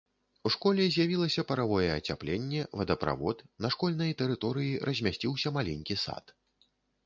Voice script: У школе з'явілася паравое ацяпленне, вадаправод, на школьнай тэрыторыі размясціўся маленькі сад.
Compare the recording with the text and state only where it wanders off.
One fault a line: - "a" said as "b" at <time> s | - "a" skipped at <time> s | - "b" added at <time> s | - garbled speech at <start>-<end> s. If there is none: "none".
none